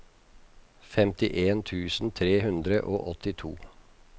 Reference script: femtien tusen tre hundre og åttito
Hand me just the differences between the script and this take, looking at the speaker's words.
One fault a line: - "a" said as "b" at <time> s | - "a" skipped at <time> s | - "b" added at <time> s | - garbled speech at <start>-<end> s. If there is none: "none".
none